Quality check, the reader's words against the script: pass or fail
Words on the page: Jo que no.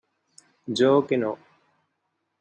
pass